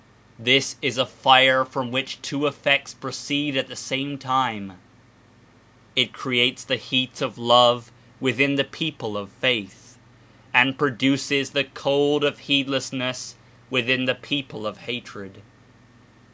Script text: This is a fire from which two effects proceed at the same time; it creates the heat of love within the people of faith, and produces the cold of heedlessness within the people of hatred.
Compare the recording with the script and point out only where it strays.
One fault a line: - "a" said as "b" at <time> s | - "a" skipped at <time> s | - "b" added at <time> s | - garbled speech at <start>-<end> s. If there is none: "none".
none